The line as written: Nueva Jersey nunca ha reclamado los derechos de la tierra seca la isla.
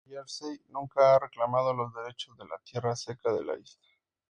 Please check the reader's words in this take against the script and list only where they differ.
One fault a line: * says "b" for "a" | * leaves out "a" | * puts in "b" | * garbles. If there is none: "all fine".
* puts in "de"